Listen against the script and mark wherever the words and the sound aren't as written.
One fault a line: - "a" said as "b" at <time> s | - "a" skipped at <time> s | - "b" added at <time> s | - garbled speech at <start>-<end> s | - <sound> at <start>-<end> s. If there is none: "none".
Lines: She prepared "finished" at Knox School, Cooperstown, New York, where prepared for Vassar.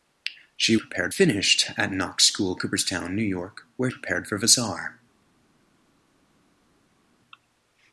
none